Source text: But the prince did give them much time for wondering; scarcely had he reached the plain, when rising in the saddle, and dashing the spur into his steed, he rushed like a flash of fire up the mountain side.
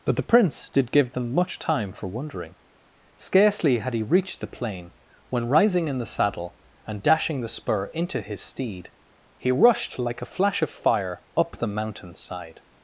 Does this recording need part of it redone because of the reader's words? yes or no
no